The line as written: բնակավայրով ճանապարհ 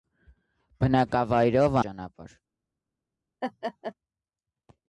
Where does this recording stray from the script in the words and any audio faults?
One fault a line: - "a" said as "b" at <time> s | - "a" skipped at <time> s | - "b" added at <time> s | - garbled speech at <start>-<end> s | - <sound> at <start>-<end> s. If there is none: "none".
- laugh at 3.4-3.9 s